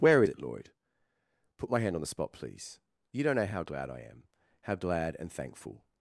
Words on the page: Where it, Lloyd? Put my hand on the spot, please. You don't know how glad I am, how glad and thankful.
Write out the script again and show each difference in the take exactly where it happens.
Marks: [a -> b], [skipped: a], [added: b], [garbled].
Where it, Lloyd? Put my hand on the spot, please. You don't know how glad I am, how glad and thankful.